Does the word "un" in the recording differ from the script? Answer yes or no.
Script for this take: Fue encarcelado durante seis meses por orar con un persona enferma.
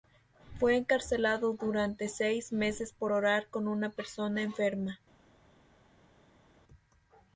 yes